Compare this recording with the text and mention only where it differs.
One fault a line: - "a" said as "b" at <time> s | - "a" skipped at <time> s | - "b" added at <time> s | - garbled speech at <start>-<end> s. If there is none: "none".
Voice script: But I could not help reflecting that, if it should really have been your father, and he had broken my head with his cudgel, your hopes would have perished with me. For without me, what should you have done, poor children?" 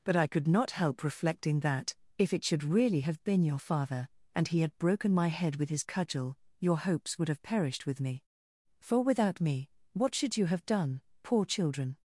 none